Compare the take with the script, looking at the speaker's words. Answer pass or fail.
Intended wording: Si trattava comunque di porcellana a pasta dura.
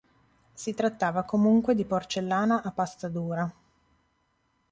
pass